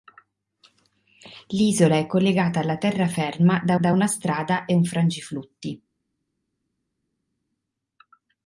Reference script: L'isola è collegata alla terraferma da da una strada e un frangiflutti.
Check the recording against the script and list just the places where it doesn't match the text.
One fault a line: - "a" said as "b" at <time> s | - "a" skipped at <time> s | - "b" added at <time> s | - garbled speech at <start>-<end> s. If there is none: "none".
none